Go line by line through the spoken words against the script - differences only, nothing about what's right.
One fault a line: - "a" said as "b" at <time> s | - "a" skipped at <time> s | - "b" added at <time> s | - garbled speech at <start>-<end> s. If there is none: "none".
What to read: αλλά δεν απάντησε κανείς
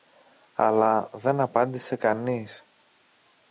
none